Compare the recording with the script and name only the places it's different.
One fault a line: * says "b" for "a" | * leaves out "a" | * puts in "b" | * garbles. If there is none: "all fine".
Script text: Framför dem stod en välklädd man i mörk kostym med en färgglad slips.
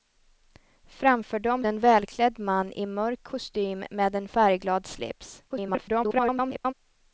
* leaves out "stod"
* garbles